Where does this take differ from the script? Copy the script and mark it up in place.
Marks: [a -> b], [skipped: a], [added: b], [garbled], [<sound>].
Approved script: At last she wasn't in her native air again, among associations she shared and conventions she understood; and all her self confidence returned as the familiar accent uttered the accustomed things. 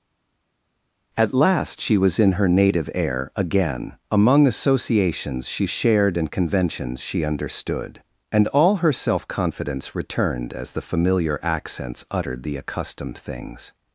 At last she [wasn't -> was] in her native air again, among associations she shared and conventions she understood; and all her self confidence returned as the familiar [accent -> accents] uttered the accustomed things.